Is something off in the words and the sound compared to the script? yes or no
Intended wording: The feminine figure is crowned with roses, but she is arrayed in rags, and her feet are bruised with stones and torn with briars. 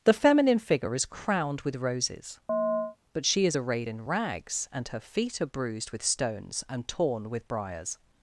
yes